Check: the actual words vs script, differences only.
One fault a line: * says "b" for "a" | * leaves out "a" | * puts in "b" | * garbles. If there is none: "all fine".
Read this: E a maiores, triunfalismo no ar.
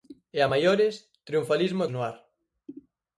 all fine